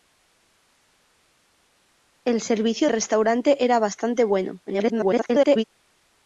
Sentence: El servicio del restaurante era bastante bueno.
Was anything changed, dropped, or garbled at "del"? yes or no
yes